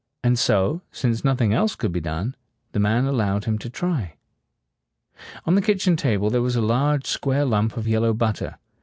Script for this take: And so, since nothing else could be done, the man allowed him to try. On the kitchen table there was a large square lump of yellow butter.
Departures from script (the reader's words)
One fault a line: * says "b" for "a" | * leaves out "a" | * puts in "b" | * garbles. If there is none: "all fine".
all fine